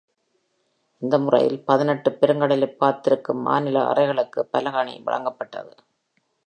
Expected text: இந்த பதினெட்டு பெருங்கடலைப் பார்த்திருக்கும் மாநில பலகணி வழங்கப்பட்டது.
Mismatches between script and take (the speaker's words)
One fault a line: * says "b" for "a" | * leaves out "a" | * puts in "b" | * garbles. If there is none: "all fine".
* puts in "முறையில்"
* puts in "அறைகளுக்கு"